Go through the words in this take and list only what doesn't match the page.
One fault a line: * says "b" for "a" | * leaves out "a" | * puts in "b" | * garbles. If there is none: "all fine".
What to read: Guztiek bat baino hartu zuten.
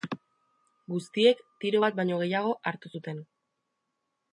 * puts in "tiro"
* puts in "gehiago"